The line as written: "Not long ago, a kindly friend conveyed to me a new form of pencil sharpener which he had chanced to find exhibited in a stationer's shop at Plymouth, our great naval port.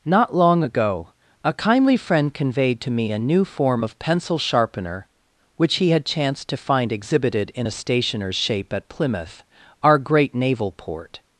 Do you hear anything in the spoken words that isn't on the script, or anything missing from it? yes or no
yes